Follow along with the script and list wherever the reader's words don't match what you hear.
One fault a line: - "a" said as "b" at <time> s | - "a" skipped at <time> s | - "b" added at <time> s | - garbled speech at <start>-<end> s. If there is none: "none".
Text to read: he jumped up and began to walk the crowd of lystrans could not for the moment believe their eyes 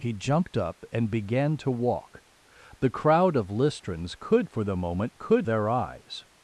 - "not" skipped at 4.5 s
- "believe" said as "could" at 5.2 s